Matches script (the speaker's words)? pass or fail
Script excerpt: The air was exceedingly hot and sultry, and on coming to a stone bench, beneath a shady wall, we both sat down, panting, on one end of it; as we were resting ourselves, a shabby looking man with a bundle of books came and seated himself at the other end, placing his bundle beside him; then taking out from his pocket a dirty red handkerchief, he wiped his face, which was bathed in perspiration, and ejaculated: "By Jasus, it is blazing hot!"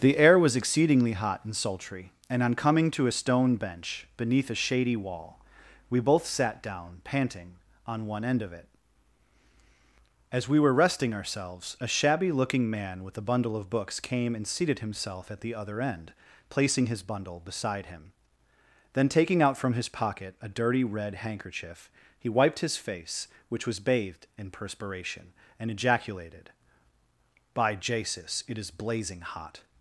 pass